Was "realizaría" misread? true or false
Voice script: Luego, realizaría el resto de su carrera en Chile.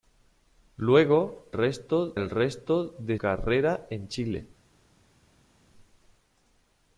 true